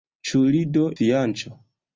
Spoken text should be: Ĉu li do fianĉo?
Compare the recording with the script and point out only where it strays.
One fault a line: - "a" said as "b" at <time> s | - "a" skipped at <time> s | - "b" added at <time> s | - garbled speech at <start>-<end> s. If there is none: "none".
none